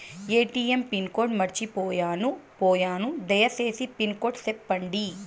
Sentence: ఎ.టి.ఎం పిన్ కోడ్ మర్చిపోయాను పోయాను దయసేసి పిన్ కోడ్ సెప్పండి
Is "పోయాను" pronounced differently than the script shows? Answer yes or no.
no